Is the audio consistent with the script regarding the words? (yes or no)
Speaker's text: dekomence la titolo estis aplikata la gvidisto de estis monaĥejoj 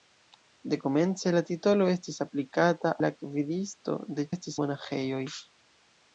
yes